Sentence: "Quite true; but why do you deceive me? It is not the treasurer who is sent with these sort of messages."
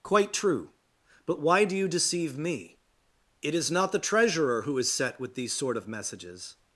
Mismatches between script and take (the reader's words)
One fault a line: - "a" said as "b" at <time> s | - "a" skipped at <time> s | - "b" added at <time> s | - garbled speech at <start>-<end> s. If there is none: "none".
- "sent" said as "set" at 4.9 s